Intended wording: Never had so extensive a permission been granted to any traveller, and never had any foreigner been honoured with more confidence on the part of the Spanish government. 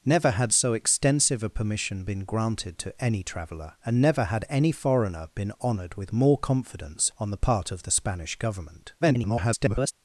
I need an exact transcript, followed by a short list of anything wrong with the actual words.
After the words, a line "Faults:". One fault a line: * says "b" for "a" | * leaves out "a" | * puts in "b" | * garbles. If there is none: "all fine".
Never had so extensive a permission been granted to any traveller, and never had any foreigner been honoured with more confidence on the part of the Spanish government. [garbled]
Faults:
* garbles